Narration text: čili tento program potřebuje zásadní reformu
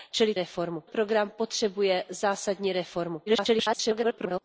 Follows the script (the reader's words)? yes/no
no